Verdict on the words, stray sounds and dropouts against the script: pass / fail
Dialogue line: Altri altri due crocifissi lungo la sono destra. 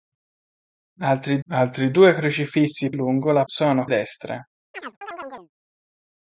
fail